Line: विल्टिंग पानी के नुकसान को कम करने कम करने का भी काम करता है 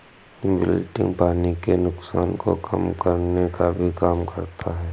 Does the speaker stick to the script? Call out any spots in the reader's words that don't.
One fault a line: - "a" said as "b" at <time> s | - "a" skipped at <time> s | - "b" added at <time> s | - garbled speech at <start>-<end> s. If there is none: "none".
- "कम करने" skipped at 3.5 s